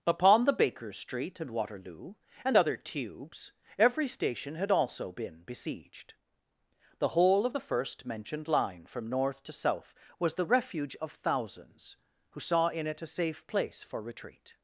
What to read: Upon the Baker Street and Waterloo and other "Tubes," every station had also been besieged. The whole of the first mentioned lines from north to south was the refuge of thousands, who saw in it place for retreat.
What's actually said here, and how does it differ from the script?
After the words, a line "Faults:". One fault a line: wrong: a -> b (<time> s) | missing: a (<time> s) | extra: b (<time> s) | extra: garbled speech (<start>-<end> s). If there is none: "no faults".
Upon the Baker Street and Waterloo and other "Tubes," every station had also been besieged. The whole of the first mentioned line from north to south was the refuge of thousands, who saw in it a safe place for retreat.
Faults:
wrong: lines -> line (8.5 s)
extra: a safe (13.0 s)